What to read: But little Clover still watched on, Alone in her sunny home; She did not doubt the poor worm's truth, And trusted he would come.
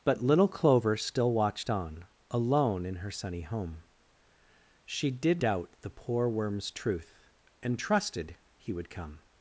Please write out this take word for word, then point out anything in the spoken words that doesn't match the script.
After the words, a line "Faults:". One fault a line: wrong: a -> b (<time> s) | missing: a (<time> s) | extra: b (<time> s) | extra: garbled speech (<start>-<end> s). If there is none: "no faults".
But little Clover still watched on, Alone in her sunny home; She did doubt the poor worm's truth, And trusted he would come.
Faults:
missing: not (5.4 s)